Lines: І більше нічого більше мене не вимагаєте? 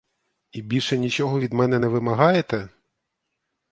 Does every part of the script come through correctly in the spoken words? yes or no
no